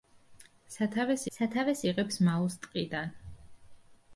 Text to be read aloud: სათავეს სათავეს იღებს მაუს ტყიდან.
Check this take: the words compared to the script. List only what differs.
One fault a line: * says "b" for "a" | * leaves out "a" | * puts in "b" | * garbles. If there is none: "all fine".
all fine